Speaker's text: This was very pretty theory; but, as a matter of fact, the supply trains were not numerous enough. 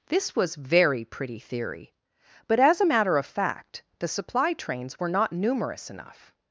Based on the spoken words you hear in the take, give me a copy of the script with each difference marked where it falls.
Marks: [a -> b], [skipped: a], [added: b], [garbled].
This was very pretty theory; but, as a matter of fact, the supply trains were not numerous enough.